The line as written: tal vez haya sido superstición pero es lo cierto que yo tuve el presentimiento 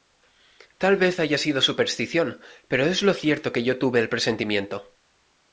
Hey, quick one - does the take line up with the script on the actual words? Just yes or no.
yes